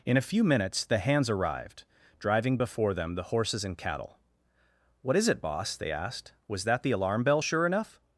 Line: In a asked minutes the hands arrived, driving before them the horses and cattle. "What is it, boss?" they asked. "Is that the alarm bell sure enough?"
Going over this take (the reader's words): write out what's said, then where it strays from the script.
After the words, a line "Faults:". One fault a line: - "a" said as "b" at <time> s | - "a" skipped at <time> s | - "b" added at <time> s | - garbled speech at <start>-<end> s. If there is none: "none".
In a few minutes the hands arrived, driving before them the horses and cattle. "What is it, boss?" they asked. "Was that the alarm bell sure enough?"
Faults:
- "asked" said as "few" at 0.3 s
- "Is" said as "Was" at 6.5 s